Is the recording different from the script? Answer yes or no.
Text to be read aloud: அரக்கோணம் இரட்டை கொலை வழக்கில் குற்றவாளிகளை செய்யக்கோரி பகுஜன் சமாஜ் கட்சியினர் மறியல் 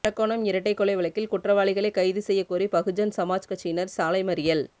yes